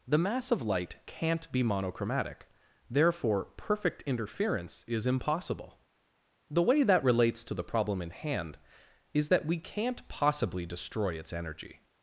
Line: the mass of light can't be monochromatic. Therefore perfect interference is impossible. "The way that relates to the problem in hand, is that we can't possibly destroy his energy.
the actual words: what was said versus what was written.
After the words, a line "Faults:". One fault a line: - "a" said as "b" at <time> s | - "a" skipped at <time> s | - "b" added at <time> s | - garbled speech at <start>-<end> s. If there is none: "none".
the mass of light can't be monochromatic. Therefore perfect interference is impossible. "The way that relates to the problem in hand, is that we can't possibly destroy its energy.
Faults:
- "his" said as "its" at 11.2 s